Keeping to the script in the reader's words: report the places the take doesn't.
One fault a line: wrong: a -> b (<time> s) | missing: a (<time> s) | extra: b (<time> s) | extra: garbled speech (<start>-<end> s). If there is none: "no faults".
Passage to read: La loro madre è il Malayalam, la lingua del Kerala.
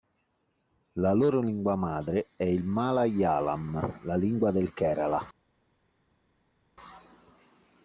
extra: lingua (1.4 s)